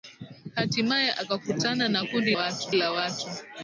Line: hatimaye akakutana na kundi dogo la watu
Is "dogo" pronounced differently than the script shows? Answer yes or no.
yes